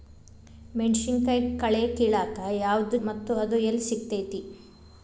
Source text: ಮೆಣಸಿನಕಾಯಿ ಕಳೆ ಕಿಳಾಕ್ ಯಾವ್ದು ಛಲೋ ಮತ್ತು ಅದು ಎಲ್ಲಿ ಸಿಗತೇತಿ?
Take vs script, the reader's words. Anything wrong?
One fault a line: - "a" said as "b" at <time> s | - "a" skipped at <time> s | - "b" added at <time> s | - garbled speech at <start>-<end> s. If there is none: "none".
- "ಛಲೋ" skipped at 3.0 s